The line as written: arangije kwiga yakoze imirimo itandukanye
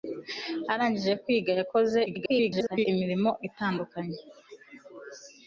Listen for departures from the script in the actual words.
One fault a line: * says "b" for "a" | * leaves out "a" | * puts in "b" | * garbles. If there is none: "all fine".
* garbles